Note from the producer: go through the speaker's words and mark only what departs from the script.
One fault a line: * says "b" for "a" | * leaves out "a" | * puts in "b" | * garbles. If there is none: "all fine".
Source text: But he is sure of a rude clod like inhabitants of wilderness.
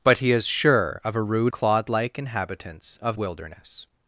all fine